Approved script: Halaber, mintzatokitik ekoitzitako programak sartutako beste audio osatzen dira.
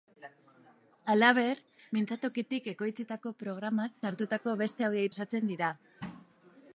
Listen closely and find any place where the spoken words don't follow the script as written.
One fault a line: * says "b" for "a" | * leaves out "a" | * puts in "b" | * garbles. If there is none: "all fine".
all fine